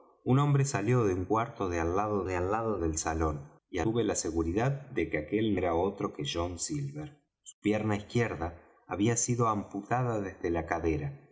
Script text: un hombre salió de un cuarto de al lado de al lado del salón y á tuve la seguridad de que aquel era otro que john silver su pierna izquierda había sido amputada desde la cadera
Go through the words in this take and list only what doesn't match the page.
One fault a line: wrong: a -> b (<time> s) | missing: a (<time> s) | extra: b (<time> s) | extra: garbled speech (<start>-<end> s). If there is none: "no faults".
no faults